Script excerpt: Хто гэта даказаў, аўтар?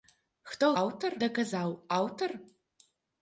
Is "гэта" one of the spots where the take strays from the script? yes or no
yes